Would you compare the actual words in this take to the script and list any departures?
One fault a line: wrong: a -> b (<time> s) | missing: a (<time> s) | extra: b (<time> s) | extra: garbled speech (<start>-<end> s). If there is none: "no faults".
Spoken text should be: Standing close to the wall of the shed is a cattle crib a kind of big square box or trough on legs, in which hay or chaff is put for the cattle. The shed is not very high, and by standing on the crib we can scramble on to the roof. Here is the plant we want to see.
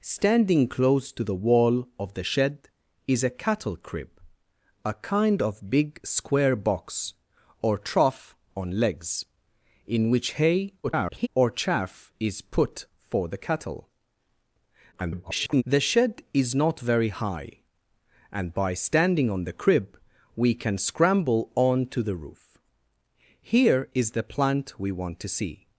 extra: garbled speech (10.8-11.3 s)
extra: garbled speech (14.9-15.6 s)